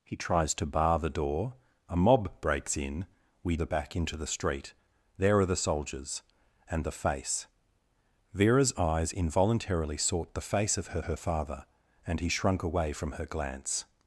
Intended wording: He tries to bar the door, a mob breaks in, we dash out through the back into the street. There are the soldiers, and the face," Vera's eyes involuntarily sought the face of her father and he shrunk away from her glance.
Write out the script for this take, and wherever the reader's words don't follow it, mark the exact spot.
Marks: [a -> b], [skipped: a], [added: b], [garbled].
He tries to bar the door, a mob breaks in, we [skipped: dash out through] the back into the street. There are the soldiers, and the face," Vera's eyes involuntarily sought the face of her [added: her] father and he shrunk away from her glance.